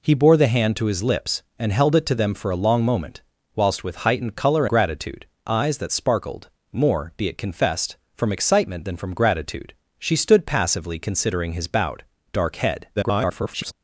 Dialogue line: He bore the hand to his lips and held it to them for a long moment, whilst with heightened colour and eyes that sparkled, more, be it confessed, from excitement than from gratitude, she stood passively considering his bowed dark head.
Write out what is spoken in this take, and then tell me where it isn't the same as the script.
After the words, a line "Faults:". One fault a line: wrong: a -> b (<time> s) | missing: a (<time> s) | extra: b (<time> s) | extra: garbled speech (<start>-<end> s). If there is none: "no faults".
He bore the hand to his lips and held it to them for a long moment, whilst with heightened colour gratitude eyes that sparkled, more, be it confessed, from excitement than from gratitude, she stood passively considering his bowed dark head. [garbled]
Faults:
wrong: and -> gratitude (4.6 s)
extra: garbled speech (13.0-13.7 s)